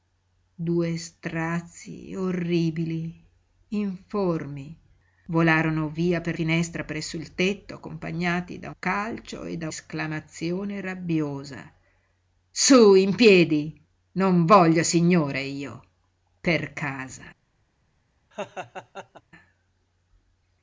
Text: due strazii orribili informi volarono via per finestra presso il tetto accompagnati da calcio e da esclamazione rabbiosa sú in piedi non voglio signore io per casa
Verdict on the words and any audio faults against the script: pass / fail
fail